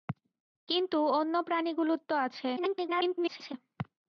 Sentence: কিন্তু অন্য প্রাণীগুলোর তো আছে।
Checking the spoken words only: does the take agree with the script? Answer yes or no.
no